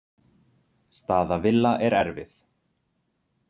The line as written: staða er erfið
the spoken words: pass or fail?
fail